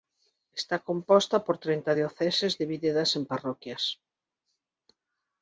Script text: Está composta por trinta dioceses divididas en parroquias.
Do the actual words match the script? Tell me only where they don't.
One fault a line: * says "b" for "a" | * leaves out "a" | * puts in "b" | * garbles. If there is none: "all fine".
all fine